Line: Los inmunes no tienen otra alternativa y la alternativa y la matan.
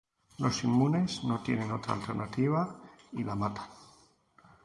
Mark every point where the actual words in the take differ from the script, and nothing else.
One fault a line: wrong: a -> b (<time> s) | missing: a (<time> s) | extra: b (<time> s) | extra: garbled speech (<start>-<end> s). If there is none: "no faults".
missing: alternativa y la (3.3 s)